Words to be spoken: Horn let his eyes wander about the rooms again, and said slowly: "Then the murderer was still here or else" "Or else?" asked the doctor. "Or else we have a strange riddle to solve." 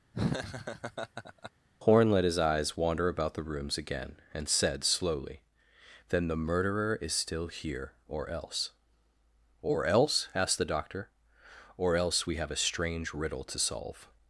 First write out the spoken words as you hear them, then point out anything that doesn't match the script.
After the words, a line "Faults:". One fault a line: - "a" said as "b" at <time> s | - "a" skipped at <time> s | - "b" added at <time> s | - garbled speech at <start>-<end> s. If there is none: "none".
Horn let his eyes wander about the rooms again, and said slowly: "Then the murderer is still here or else" "Or else?" asked the doctor. "Or else we have a strange riddle to solve."
Faults:
- "was" said as "is" at 7.0 s